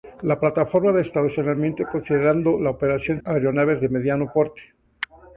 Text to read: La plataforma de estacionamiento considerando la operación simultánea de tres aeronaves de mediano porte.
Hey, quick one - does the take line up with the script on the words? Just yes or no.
no